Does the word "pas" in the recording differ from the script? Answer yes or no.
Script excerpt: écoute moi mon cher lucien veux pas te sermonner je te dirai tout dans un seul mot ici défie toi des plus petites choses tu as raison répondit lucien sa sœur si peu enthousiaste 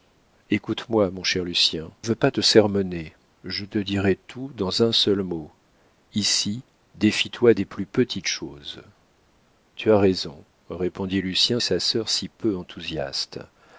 no